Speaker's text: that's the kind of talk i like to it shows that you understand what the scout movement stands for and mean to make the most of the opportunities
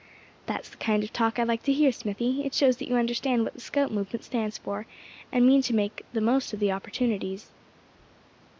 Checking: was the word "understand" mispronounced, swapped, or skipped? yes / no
no